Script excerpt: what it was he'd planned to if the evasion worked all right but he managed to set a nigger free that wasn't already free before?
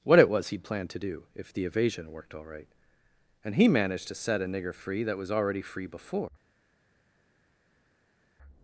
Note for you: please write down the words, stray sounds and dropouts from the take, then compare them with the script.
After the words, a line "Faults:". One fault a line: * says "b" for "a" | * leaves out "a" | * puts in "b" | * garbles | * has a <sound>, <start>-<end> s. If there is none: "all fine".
what it was he'd planned to do if the evasion worked all right and he managed to set a nigger free that was already free before?
Faults:
* puts in "do"
* says "and" for "but"
* says "was" for "wasn't"